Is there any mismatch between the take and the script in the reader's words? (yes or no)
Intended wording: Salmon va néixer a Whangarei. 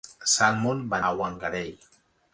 yes